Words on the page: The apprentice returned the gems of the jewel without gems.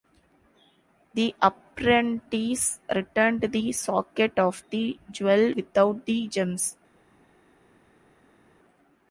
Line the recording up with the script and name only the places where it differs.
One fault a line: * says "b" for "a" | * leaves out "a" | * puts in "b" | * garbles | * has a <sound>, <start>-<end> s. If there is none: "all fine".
* says "socket" for "gems"
* puts in "the"